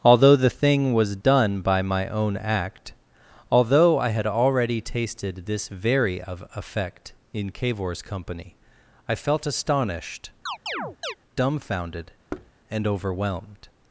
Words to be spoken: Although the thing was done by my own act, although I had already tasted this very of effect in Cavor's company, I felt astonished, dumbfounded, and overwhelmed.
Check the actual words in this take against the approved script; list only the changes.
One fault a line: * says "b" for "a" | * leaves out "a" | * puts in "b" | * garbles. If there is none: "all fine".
all fine